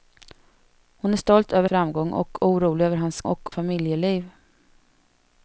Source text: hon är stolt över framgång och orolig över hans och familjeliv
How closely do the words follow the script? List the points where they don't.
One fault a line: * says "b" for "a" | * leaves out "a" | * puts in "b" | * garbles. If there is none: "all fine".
all fine